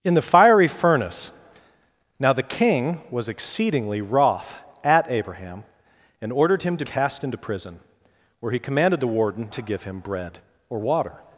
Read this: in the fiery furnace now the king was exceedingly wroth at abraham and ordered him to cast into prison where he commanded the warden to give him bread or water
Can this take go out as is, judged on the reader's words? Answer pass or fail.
pass